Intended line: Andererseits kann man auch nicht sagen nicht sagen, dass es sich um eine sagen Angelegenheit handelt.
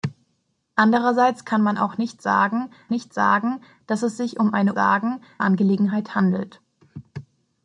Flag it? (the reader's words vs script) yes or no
no